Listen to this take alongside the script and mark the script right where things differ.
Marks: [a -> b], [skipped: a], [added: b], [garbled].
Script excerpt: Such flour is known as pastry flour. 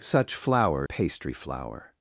Such flour [skipped: is known as] pastry flour.